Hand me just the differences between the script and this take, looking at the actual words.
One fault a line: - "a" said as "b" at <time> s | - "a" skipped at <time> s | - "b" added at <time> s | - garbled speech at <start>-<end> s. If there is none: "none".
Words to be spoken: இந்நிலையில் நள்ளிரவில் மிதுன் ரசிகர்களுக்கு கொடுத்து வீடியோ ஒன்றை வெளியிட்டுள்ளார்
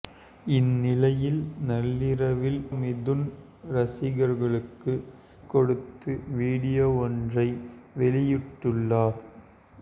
none